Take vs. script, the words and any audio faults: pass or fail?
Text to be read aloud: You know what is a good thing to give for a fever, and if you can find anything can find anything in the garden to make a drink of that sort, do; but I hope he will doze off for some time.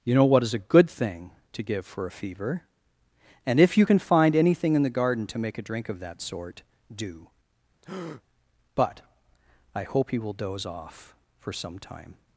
fail